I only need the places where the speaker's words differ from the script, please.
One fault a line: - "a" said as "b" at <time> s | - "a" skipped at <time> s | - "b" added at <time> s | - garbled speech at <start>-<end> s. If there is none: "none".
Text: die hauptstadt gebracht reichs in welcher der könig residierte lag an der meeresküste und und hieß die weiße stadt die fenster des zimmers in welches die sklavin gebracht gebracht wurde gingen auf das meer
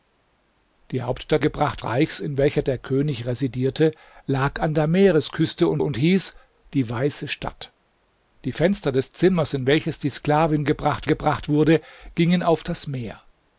none